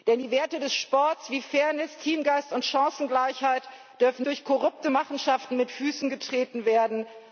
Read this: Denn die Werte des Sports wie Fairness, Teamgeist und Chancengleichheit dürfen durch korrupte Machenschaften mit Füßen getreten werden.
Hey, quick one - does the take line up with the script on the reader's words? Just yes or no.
yes